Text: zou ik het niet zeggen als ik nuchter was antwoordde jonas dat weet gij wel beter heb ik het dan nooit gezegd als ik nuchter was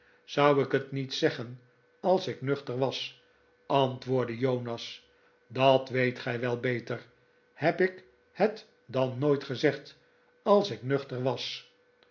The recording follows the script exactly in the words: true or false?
true